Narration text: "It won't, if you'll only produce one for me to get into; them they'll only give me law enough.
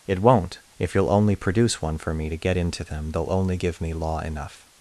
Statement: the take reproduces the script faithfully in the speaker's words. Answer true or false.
true